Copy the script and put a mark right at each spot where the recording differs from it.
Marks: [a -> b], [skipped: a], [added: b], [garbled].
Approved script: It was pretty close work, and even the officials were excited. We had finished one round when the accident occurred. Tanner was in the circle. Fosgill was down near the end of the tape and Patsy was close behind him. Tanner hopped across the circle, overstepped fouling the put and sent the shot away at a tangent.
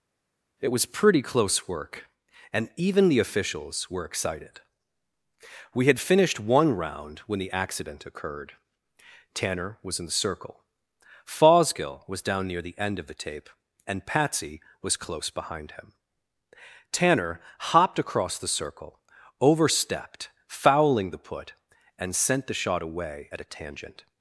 It was pretty close work, and even the officials were excited. We had finished one round when the accident occurred. Tanner was in the circle. Fosgill was down near the end of the tape and Patsy was close behind him. Tanner hopped across the circle, overstepped fouling the put and sent the shot away at a tangent.